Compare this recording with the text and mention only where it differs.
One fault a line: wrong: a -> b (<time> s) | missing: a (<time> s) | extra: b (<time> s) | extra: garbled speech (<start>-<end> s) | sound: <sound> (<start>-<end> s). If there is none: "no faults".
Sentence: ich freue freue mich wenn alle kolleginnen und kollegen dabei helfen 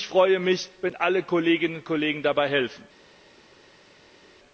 missing: freue (0.4 s)